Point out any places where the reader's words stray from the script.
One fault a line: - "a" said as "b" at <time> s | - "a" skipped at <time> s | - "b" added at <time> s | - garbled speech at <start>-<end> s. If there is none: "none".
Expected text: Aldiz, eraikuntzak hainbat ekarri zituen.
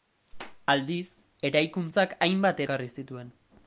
none